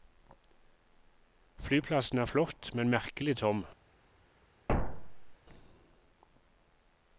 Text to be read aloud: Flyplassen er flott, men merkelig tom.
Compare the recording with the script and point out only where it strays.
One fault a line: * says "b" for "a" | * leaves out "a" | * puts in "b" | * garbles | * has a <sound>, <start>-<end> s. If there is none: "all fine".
* has a thud, 4.7-5.4 s